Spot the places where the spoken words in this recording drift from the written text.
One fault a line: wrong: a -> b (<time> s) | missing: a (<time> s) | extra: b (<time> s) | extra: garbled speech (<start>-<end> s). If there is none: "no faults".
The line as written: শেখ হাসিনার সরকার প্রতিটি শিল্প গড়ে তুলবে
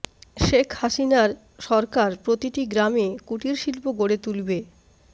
extra: গ্রামে কুটির (2.6 s)